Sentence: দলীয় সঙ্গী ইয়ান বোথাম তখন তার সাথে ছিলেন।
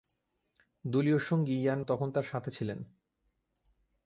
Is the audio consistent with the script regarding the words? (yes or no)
no